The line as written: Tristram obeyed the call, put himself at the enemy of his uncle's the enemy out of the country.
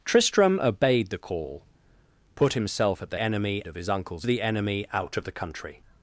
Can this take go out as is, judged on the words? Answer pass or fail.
pass